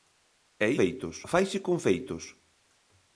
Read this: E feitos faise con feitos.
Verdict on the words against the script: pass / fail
pass